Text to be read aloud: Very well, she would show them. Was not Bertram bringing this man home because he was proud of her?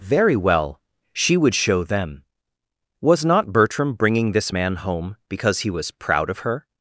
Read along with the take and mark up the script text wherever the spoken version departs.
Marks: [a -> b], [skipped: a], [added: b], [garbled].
Very well, she would show them. Was not Bertram bringing this man home because he was proud of her?